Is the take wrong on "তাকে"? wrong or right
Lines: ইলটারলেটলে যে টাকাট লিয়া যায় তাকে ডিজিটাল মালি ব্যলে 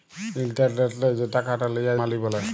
wrong